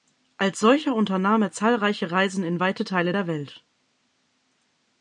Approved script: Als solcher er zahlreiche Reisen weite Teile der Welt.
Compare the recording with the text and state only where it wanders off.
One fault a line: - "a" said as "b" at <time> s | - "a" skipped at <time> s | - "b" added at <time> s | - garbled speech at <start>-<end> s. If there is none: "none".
- "unternahm" added at 0.9 s
- "in" added at 2.4 s